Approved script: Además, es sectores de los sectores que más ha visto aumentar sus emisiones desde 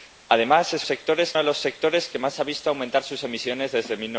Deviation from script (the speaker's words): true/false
false